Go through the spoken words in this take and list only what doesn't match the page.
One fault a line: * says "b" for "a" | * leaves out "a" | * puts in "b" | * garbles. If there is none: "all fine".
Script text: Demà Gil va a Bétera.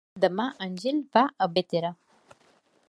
* puts in "en"